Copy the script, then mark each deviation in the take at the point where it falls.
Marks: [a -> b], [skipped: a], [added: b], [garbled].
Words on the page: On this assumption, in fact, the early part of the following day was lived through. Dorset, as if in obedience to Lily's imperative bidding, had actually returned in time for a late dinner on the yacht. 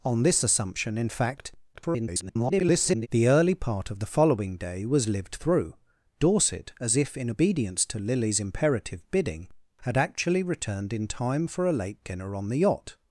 On this assumption, in fact, [garbled] the early part of the following day was lived through. Dorset, as if in obedience to Lily's imperative bidding, had actually returned in time for a late dinner on the yacht.